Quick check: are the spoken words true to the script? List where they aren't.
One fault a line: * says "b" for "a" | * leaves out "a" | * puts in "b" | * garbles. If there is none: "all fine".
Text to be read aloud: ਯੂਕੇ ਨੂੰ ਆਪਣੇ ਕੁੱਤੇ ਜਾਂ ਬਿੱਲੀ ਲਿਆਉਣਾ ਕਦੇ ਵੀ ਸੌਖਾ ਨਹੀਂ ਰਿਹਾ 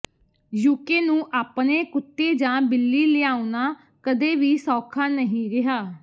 all fine